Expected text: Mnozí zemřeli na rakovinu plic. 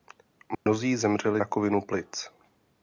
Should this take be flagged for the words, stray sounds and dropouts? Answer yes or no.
yes